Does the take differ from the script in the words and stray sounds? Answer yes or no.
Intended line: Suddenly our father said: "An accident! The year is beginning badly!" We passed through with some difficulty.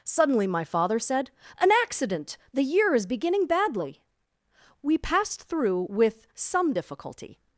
yes